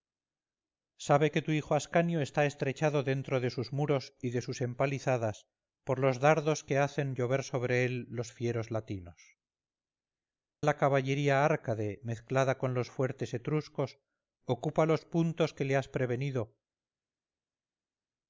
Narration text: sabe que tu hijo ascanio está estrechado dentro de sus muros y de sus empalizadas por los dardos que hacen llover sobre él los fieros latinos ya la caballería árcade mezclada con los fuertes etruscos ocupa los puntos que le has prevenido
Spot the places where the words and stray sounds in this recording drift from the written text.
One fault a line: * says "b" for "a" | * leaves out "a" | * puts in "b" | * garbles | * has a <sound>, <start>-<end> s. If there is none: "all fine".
* leaves out "ya"